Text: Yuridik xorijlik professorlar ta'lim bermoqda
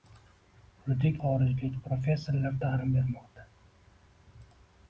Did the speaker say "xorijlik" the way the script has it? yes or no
yes